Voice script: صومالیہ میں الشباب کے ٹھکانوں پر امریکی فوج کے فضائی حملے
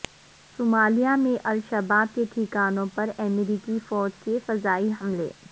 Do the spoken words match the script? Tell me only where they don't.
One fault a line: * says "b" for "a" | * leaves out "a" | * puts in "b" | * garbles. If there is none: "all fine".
all fine